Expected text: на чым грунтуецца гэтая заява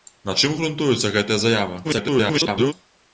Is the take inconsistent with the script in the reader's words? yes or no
yes